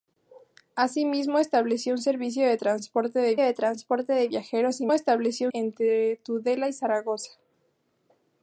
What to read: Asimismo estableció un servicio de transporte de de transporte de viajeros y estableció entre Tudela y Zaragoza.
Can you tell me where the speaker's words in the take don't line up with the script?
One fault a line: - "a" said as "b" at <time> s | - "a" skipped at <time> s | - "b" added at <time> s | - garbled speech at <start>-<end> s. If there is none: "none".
none